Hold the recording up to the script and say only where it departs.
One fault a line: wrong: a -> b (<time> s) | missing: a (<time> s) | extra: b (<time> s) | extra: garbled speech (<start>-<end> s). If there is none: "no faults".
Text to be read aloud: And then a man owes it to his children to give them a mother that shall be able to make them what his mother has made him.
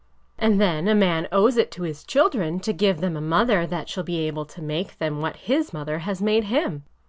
no faults